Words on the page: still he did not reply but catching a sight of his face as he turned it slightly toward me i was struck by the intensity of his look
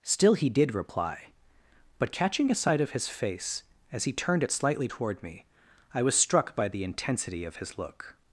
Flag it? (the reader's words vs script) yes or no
yes